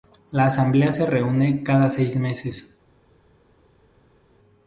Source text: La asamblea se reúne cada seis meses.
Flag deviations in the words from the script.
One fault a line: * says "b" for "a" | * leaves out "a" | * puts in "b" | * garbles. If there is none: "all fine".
all fine